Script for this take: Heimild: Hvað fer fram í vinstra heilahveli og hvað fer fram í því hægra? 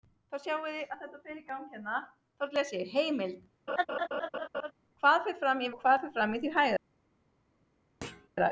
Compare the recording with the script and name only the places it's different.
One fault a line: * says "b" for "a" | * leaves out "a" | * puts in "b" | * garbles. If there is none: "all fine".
* leaves out "vinstra heilahveli"